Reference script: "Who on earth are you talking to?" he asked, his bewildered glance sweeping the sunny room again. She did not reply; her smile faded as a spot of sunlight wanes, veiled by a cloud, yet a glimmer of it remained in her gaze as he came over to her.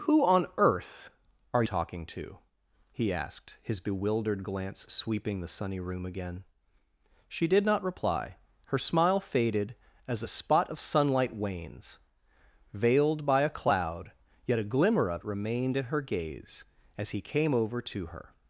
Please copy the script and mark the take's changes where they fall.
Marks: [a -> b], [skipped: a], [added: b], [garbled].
"Who on earth are [skipped: you] talking to?" he asked, his bewildered glance sweeping the sunny room again. She did not reply; her smile faded as a spot of sunlight wanes, veiled by a cloud, yet a glimmer of [skipped: it] remained in her gaze as he came over to her.